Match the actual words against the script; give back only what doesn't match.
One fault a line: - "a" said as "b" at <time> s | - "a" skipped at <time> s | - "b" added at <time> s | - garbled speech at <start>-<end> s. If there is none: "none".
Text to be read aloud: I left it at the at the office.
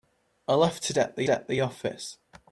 none